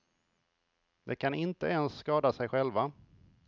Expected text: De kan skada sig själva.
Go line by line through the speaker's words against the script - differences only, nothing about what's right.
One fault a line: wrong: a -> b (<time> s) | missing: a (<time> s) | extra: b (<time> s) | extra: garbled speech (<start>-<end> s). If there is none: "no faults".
extra: inte ens (1.3 s)